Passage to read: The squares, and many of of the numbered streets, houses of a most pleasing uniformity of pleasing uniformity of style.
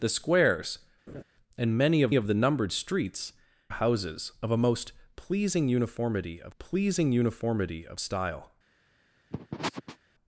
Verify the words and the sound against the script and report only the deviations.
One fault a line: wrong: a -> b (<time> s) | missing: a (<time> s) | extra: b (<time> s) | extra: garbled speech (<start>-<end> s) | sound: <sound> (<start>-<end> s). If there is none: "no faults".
sound: laugh (1.1-1.2 s)
sound: sniff (9.3-10.0 s)